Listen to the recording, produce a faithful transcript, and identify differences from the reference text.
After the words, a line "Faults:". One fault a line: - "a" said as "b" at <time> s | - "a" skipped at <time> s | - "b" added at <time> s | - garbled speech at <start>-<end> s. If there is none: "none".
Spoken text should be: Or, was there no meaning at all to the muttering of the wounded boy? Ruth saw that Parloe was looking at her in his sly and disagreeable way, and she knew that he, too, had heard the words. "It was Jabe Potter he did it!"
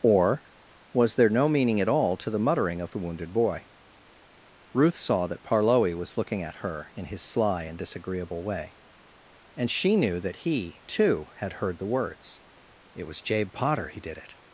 Or, was there no meaning at all to the muttering of the wounded boy? Ruth saw that Parloe was looking at her in his sly and disagreeable way, and she knew that he, too, had heard the words. "It was Jabe Potter he did it!"
Faults:
none